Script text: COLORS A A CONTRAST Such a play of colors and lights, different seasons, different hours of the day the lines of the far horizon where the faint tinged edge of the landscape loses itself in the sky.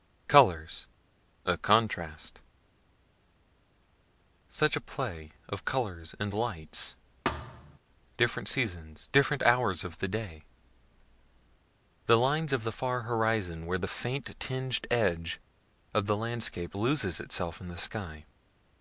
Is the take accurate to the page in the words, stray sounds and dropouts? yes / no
no